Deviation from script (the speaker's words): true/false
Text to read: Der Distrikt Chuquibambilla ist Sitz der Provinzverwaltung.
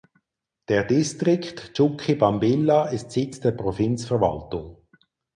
false